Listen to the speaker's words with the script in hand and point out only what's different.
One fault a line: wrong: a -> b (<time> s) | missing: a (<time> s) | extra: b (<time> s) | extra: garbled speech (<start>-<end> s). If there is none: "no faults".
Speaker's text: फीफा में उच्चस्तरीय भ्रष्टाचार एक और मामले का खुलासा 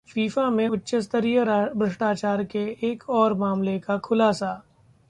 extra: के (2.4 s)